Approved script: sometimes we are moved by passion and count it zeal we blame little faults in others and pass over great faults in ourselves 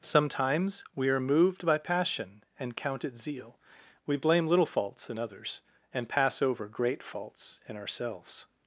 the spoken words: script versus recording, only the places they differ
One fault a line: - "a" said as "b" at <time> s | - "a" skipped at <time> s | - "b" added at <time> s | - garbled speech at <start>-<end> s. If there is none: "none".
none